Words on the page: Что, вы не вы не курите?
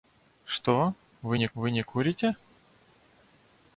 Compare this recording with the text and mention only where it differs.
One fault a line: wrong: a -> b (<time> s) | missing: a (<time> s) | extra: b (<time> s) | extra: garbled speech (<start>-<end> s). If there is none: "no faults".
no faults